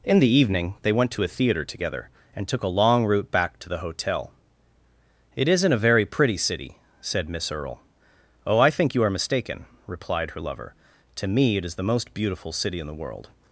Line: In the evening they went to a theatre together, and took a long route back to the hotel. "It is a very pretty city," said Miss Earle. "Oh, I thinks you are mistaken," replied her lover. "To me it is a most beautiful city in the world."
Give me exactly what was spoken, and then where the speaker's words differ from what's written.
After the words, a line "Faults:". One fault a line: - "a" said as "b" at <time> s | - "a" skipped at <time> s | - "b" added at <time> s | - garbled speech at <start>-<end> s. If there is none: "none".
In the evening they went to a theatre together, and took a long route back to the hotel. "It isn't a very pretty city," said Miss Earle. "Oh, I think you are mistaken," replied her lover. "To me it is the most beautiful city in the world."
Faults:
- "is" said as "isn't" at 5.5 s
- "thinks" said as "think" at 8.7 s
- "a" said as "the" at 11.7 s